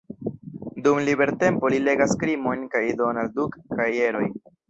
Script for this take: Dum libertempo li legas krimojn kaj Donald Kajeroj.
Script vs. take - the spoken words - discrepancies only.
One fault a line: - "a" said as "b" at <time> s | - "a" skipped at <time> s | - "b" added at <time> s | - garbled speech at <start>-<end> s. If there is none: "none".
- "Duck" added at 3.4 s